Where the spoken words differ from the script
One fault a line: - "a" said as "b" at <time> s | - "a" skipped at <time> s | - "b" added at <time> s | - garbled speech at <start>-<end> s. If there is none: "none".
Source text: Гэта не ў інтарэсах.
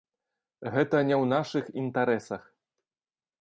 - "нашых" added at 1.3 s